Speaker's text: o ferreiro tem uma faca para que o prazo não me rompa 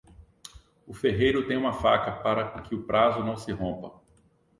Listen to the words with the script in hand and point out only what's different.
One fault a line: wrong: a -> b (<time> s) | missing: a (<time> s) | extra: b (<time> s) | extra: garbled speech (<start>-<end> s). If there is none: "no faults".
wrong: me -> se (3.4 s)